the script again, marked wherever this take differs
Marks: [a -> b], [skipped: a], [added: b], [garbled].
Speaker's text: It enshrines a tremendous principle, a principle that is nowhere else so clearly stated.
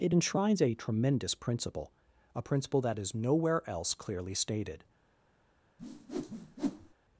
It enshrines a tremendous principle, a principle that is nowhere else [skipped: so] clearly stated.